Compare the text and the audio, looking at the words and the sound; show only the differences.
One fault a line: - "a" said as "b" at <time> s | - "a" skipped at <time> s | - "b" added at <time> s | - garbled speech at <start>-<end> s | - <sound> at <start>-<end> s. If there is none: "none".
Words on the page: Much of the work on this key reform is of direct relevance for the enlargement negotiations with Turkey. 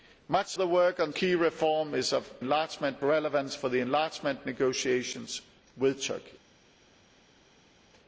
- "of" skipped at 0.6 s
- "this" skipped at 1.1 s
- "direct" said as "enlargement" at 2.4 s